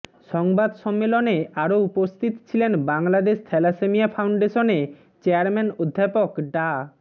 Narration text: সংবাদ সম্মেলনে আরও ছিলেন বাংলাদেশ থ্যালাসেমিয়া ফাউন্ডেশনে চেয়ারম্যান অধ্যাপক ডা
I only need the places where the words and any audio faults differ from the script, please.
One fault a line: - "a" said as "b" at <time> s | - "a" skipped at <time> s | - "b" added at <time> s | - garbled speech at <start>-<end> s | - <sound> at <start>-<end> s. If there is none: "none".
- "উপস্থিত" added at 1.9 s